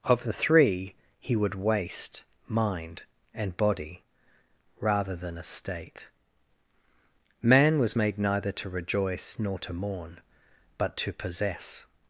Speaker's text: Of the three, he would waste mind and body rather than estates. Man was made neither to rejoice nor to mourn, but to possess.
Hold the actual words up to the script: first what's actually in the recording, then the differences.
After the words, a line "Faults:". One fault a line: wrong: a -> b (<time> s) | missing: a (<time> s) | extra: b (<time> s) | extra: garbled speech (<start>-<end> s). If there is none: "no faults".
Of the three, he would waste mind and body rather than estate. Man was made neither to rejoice nor to mourn, but to possess.
Faults:
wrong: estates -> estate (5.4 s)